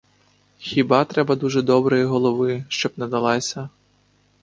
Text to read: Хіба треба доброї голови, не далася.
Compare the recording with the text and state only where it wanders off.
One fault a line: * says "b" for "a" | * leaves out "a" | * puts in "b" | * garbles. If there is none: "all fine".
* puts in "дуже"
* puts in "щоб"